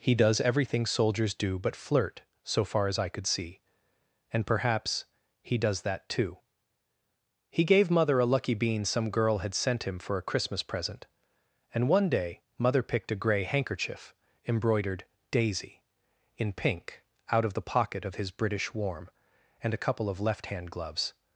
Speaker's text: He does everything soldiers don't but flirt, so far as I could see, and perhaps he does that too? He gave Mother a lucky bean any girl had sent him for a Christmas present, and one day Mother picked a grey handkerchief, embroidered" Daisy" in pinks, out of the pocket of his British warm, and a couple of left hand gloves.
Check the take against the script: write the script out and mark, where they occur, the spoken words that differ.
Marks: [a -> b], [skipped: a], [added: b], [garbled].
He does everything soldiers [don't -> do] but flirt, so far as I could see, and perhaps he does that too? He gave Mother a lucky bean [any -> some] girl had sent him for a Christmas present, and one day Mother picked a grey handkerchief, embroidered" Daisy" in [pinks, -> pink] out of the pocket of his British warm, and a couple of left hand gloves.